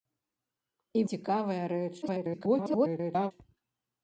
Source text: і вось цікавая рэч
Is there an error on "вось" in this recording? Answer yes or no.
yes